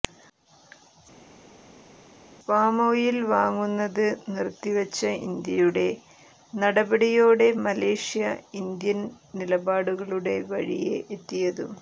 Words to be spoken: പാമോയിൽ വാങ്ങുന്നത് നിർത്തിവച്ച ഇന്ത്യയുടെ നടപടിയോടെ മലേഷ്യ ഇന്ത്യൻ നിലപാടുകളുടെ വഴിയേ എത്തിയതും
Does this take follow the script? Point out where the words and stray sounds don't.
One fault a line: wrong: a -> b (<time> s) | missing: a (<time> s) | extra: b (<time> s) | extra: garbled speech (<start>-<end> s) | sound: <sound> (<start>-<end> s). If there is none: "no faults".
no faults